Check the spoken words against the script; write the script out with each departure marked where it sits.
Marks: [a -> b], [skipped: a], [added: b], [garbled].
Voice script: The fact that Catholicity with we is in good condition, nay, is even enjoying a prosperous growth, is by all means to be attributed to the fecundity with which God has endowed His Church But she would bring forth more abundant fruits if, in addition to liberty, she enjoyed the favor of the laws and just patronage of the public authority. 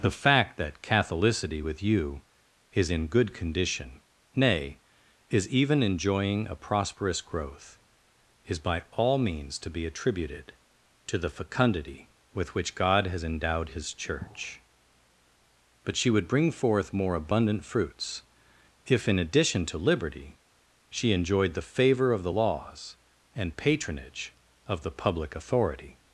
The fact that Catholicity with [we -> you] is in good condition, nay, is even enjoying a prosperous growth, is by all means to be attributed to the fecundity with which God has endowed His Church But she would bring forth more abundant fruits if, in addition to liberty, she enjoyed the favor of the laws and [skipped: just] patronage of the public authority.